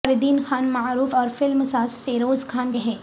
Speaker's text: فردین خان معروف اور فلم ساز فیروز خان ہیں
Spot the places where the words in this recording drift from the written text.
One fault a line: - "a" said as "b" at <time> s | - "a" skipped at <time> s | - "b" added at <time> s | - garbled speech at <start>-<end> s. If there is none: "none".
none